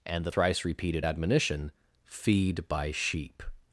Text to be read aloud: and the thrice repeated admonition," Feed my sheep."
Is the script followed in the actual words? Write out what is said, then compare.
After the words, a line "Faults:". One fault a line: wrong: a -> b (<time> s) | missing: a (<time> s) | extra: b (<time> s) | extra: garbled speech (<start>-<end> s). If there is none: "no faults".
and the thrice repeated admonition," Feed by sheep."
Faults:
wrong: my -> by (2.7 s)